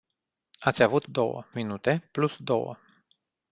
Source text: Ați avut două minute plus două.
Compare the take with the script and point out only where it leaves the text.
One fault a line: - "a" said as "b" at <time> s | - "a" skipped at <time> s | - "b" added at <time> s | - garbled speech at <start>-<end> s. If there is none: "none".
none